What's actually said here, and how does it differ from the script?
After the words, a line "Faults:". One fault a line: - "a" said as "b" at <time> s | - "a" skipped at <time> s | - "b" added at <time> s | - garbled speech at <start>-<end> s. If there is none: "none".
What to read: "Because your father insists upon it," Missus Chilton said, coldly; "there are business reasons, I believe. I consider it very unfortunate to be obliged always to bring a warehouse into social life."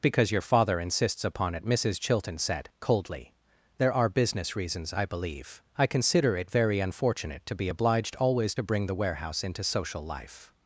"Because your father insists upon it," Missus Chilton said, coldly; "there are business reasons, I believe. I consider it very unfortunate to be obliged always to bring the warehouse into social life."
Faults:
- "a" said as "the" at 8.9 s